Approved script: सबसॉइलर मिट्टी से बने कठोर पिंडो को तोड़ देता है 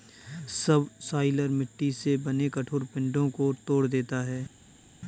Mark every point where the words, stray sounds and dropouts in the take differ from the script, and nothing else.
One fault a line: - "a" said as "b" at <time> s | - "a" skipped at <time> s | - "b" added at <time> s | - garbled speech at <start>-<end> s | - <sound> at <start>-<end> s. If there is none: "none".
none